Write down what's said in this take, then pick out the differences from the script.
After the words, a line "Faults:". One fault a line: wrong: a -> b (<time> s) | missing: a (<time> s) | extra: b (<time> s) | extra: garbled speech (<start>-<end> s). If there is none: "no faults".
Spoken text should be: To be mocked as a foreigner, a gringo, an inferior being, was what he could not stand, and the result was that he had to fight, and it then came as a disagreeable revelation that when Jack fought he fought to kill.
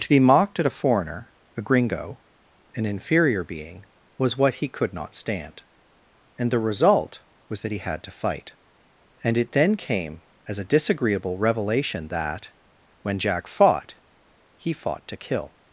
To be mocked at a foreigner, a gringo, an inferior being, was what he could not stand, and the result was that he had to fight, and it then came as a disagreeable revelation that when Jack fought he fought to kill.
Faults:
wrong: as -> at (0.6 s)